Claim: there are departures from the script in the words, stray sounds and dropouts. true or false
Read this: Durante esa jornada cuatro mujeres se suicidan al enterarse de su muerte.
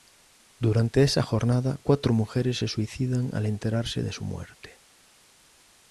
false